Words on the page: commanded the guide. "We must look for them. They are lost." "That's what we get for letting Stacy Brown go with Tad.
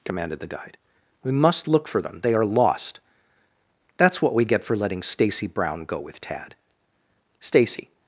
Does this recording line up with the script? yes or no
no